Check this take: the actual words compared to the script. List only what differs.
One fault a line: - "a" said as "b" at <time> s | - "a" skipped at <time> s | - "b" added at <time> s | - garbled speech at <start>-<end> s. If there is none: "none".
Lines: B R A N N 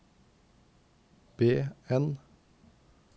- "R A N" skipped at 1.6 s